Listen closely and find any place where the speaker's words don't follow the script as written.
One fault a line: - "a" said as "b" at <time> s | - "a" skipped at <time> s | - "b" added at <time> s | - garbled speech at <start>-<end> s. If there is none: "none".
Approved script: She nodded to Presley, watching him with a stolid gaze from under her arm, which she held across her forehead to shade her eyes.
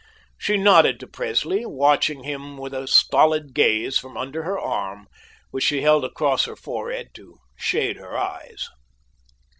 none